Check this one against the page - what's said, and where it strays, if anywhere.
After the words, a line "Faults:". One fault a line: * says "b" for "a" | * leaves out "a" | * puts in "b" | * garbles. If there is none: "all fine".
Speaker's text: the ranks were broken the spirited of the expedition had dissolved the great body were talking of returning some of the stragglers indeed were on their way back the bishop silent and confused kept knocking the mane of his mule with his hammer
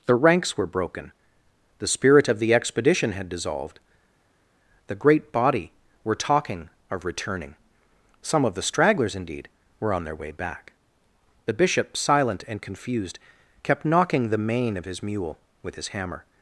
the ranks were broken the spirit of the expedition had dissolved the great body were talking of returning some of the stragglers indeed were on their way back the bishop silent and confused kept knocking the mane of his mule with his hammer
Faults:
* says "spirit" for "spirited"